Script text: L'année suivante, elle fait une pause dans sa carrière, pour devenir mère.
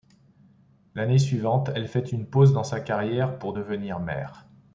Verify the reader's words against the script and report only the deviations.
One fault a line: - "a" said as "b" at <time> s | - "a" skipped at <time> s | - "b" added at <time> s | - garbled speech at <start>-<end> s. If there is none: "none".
none